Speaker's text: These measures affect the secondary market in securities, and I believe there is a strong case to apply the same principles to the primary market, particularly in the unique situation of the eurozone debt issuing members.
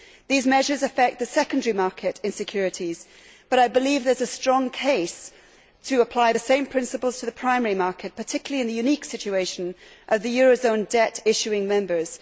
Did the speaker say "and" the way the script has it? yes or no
no